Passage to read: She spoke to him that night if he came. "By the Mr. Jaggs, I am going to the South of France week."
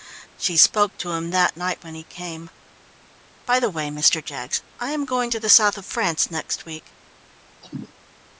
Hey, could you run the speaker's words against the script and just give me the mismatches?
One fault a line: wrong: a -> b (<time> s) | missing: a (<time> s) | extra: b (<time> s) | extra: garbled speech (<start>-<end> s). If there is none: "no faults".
wrong: if -> when (1.8 s)
extra: way (3.7 s)
extra: next (6.3 s)